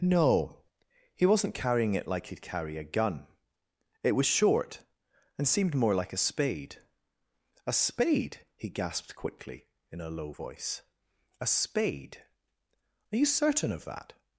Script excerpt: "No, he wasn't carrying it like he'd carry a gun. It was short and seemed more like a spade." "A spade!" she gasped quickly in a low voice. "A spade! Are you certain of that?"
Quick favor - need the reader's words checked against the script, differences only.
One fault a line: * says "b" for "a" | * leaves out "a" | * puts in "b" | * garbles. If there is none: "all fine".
* says "he" for "she"